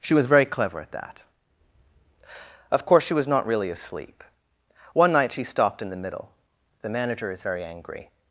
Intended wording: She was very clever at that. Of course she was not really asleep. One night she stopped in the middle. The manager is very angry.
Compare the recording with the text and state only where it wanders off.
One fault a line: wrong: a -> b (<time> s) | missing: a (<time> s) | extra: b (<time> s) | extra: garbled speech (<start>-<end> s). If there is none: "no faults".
no faults